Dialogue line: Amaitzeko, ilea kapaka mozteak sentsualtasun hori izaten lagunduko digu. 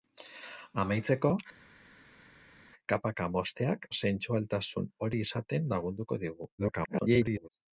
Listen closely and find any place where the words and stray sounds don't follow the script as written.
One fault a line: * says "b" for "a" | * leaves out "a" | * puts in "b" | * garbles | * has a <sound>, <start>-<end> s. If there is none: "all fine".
* leaves out "ilea"
* garbles